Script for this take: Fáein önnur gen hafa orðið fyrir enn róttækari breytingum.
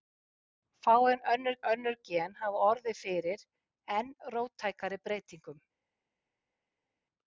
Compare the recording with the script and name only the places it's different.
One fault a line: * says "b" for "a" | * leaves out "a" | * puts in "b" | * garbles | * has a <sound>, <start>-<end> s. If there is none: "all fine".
* puts in "önnur"